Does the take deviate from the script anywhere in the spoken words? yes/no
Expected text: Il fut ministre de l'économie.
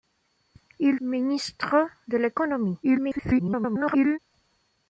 yes